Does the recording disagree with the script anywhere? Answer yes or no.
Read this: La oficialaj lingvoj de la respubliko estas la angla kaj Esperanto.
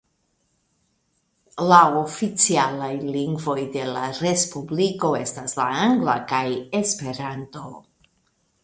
no